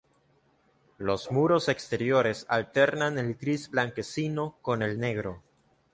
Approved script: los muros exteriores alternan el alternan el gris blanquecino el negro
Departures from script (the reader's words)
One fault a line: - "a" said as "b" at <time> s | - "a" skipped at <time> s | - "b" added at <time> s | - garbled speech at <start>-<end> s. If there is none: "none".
- "alternan el" skipped at 3.4 s
- "con" added at 4.6 s